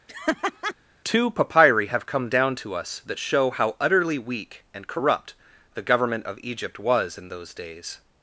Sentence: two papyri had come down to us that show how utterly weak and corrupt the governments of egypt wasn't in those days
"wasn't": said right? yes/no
no